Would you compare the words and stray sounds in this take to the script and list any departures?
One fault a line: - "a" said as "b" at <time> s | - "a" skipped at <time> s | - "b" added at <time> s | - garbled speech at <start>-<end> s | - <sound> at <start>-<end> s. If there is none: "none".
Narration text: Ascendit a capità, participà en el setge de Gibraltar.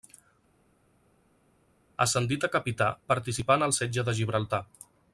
none